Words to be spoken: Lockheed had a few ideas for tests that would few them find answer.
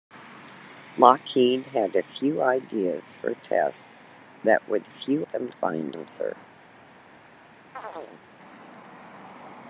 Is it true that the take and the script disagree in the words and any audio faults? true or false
true